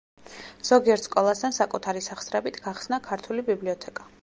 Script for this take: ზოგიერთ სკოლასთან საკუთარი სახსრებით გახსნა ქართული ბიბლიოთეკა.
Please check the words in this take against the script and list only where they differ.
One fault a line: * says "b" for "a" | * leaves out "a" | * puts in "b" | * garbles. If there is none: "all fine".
all fine